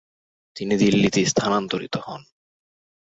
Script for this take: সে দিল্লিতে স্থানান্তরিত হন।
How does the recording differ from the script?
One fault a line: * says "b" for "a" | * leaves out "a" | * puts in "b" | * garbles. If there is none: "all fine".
* says "তিনি" for "সে"